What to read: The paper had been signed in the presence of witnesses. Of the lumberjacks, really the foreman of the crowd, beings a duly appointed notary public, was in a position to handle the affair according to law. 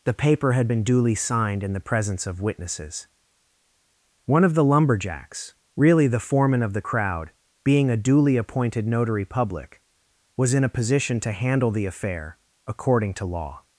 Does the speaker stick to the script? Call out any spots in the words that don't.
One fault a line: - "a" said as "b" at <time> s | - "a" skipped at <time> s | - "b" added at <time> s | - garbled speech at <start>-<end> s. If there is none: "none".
- "duly" added at 0.8 s
- "One" added at 4.3 s
- "beings" said as "being" at 7.7 s